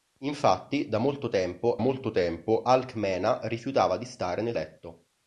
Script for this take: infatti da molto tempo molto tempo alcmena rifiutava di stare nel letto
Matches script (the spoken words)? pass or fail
pass